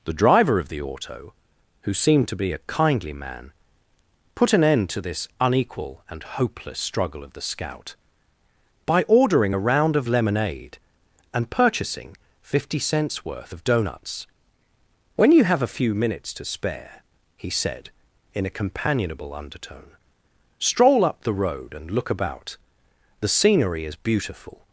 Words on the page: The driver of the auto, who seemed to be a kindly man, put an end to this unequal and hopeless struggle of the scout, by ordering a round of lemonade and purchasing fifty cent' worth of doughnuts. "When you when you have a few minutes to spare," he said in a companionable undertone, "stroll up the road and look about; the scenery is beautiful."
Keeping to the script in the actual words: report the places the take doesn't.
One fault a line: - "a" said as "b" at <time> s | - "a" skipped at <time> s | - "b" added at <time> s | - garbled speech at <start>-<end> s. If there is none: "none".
- "cent" said as "cents" at 12.8 s
- "when you" skipped at 15.4 s